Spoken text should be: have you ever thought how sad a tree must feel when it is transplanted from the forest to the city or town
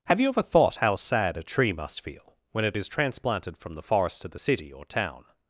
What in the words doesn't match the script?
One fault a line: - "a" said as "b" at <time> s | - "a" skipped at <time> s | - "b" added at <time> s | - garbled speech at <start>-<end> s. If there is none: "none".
none